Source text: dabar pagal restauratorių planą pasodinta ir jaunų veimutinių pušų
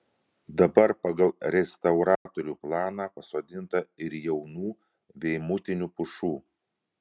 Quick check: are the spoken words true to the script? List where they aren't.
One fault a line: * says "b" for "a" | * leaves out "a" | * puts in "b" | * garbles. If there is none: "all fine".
all fine